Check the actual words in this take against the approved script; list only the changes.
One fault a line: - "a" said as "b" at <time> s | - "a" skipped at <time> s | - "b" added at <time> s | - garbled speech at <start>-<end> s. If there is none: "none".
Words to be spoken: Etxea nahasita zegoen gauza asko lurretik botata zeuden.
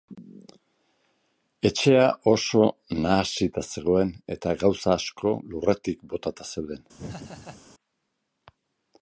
- "oso" added at 2.3 s
- "eta" added at 4.4 s